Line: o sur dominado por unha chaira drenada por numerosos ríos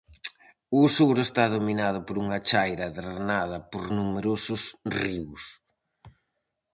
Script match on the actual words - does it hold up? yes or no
no